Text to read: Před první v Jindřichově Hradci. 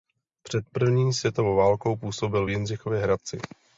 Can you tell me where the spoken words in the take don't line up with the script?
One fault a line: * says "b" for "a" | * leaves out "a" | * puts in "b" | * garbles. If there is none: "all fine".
* puts in "světovou válkou působil"